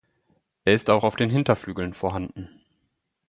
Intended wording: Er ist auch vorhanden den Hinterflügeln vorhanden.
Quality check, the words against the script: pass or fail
fail